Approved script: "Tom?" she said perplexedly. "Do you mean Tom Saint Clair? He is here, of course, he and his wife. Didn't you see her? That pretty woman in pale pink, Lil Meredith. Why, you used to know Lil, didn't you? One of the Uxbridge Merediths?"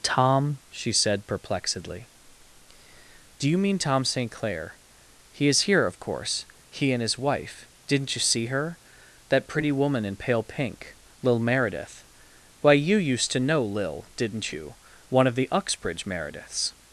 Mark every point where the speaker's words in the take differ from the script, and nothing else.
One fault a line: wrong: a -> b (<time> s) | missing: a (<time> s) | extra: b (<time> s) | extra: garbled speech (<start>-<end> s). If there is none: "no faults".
no faults